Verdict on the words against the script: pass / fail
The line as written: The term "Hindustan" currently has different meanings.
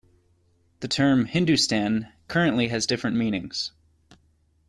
pass